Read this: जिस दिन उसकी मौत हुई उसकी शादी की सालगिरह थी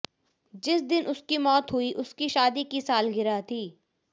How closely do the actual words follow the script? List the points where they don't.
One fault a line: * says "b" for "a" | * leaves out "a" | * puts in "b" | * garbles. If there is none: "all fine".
all fine